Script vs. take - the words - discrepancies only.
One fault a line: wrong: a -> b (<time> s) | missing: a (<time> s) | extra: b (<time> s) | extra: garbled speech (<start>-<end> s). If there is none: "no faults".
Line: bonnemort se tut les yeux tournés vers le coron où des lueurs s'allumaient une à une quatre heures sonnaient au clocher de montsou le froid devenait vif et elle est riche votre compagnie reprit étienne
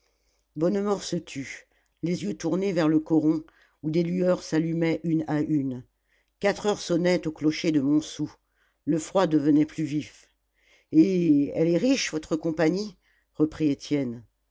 extra: plus (9.7 s)